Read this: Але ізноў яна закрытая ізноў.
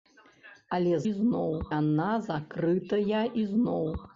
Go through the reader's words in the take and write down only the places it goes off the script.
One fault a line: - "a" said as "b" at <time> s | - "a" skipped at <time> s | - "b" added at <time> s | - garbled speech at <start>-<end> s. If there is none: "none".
none